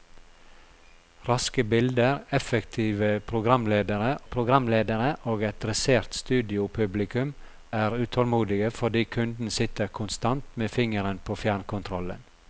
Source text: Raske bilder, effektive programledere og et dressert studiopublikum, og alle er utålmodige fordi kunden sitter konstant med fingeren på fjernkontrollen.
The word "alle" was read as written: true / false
false